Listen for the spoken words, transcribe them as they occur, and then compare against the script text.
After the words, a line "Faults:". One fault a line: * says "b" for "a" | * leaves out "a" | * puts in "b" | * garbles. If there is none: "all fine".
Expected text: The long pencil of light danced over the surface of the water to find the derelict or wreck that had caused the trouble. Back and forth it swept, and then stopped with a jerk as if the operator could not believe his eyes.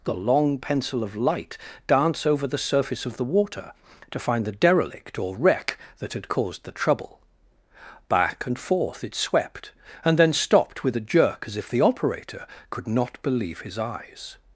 The long pencil of light dance over the surface of the water to find the derelict or wreck that had caused the trouble. Back and forth it swept, and then stopped with a jerk as if the operator could not believe his eyes.
Faults:
* says "dance" for "danced"